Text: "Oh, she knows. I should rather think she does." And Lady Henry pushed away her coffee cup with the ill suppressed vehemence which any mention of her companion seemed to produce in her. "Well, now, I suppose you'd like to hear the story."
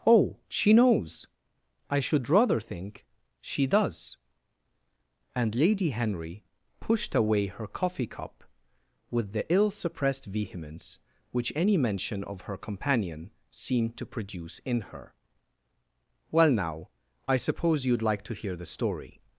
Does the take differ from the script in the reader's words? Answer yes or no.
no